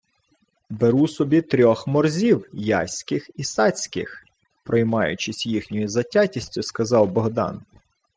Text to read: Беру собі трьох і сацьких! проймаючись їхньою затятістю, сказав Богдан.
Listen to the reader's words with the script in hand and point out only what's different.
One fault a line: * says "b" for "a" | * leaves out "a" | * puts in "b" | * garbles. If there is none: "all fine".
* puts in "морзів яських"